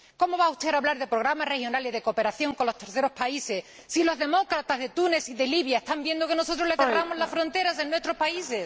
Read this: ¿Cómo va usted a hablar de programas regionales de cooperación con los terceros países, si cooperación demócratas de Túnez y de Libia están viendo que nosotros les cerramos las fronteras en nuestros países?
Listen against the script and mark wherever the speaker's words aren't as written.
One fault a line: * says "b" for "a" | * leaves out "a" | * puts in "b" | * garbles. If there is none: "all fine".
* says "los" for "cooperación"